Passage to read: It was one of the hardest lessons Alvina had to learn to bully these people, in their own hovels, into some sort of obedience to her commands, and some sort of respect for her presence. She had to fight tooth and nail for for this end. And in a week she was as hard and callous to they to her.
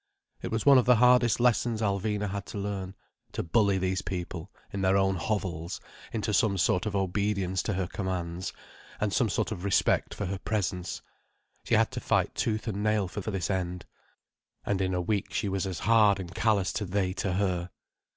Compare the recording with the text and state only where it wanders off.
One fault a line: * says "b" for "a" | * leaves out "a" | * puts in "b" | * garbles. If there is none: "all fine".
all fine